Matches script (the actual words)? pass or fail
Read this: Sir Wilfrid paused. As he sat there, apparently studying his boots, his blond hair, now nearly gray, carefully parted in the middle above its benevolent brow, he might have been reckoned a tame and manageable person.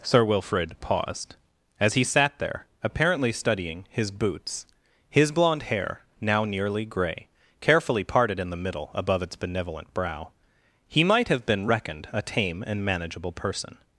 pass